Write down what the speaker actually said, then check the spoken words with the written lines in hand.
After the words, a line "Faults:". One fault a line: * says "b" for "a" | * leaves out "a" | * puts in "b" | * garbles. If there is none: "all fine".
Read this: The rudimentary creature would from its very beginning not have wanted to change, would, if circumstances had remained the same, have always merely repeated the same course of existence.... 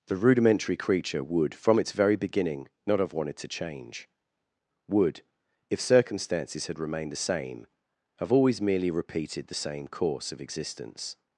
The rudimentary creature would from its very beginning not have wanted to change, would, if circumstances had remained the same, have always merely repeated the same course of existence....
Faults:
all fine